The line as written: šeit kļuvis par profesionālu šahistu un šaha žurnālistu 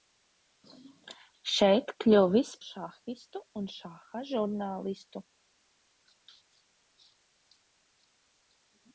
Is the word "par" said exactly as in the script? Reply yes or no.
no